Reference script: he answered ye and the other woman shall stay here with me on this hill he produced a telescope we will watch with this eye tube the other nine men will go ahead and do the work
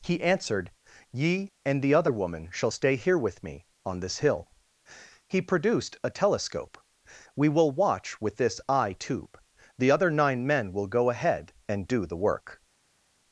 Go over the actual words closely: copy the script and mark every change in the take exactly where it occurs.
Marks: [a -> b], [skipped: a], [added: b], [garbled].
he answered ye and the other woman shall stay here with me on this hill he produced a telescope we will watch with this eye tube the other nine men will go ahead and do the work